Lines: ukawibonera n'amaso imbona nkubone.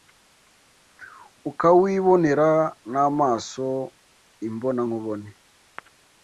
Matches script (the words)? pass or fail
pass